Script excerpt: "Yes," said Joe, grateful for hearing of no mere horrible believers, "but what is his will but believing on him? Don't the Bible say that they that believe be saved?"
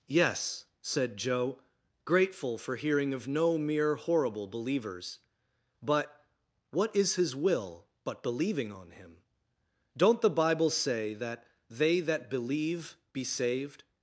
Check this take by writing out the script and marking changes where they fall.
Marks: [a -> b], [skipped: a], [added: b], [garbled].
"Yes," said Joe, grateful for hearing of no mere horrible believers, "but what is his will but believing on him? Don't the Bible say that they that believe be saved?"